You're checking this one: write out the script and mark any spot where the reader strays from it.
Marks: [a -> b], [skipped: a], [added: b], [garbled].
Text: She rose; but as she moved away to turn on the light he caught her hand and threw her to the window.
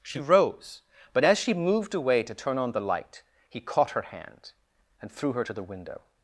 She rose; but as she moved away to turn on the light he caught her hand and threw her to the window.